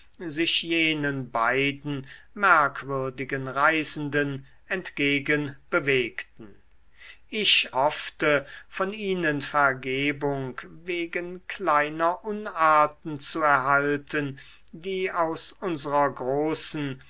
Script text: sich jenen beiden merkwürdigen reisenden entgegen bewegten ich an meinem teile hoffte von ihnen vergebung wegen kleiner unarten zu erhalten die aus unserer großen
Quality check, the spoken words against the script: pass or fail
fail